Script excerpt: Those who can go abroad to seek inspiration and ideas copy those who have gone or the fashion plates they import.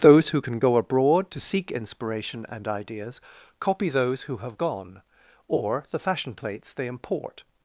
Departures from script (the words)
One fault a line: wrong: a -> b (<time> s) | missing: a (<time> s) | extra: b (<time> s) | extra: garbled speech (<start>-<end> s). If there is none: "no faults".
no faults